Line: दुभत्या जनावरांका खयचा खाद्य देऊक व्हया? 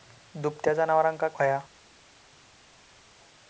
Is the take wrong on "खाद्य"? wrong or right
wrong